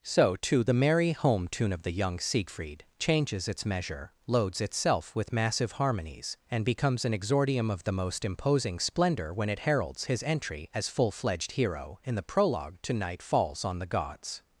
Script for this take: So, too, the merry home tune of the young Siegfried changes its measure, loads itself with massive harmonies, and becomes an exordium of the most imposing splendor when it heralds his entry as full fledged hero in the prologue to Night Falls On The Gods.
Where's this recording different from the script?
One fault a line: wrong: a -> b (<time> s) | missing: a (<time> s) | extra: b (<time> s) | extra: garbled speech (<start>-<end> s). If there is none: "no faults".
no faults